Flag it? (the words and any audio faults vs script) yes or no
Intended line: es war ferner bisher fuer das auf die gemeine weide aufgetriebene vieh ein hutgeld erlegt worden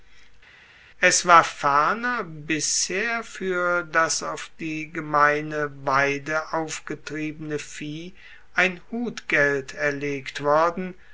no